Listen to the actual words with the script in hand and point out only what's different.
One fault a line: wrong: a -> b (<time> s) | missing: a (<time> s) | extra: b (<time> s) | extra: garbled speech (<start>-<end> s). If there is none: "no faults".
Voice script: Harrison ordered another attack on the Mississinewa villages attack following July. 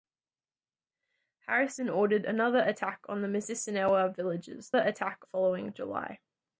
no faults